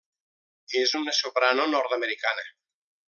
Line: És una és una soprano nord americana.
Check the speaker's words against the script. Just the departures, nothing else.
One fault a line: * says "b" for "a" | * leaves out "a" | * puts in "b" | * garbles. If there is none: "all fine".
* leaves out "és una"